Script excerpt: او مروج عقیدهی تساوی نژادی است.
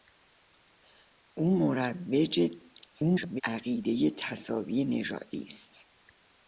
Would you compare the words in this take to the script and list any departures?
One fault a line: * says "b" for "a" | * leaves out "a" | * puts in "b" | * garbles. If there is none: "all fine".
* garbles